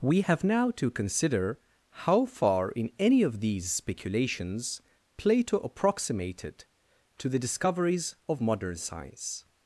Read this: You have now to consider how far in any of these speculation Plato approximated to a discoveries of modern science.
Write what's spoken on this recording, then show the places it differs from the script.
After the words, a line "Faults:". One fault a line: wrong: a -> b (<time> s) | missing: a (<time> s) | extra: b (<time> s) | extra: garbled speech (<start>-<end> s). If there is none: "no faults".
We have now to consider how far in any of these speculations Plato approximated to the discoveries of modern science.
Faults:
wrong: You -> We (0.0 s)
wrong: speculation -> speculations (3.7 s)
wrong: a -> the (7.3 s)